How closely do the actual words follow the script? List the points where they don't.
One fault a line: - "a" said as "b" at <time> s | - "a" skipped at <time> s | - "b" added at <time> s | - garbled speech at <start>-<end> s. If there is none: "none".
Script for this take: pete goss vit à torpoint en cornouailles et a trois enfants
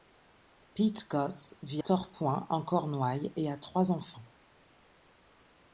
- "à" skipped at 1.8 s